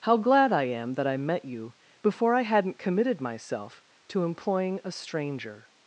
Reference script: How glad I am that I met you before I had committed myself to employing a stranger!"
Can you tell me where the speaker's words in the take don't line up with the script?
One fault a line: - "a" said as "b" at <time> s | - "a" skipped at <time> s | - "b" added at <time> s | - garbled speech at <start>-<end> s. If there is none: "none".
- "had" said as "hadn't" at 2.4 s